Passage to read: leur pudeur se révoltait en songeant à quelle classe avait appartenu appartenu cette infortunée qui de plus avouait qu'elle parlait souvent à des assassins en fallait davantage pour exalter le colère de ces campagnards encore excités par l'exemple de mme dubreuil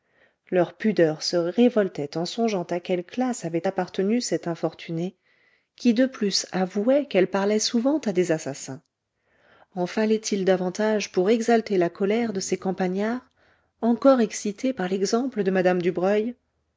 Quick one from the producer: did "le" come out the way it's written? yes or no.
no